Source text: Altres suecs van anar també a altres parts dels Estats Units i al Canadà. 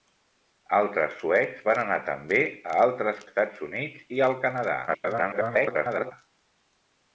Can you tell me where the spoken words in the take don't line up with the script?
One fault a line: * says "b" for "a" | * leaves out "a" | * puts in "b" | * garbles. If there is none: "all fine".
* leaves out "parts dels"
* garbles